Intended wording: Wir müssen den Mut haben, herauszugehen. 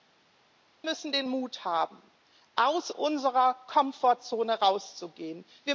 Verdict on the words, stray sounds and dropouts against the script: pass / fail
fail